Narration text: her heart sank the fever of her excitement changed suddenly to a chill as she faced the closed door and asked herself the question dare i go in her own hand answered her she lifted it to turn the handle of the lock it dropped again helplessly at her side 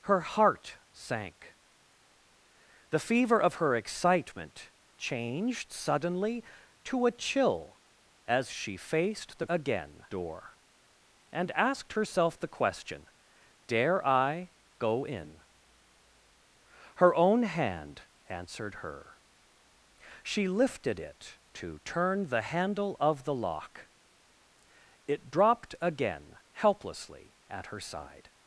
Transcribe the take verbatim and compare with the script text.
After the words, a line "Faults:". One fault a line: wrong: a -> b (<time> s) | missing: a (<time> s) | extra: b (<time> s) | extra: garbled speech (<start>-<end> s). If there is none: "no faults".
her heart sank the fever of her excitement changed suddenly to a chill as she faced the again door and asked herself the question dare i go in her own hand answered her she lifted it to turn the handle of the lock it dropped again helplessly at her side
Faults:
wrong: closed -> again (9.5 s)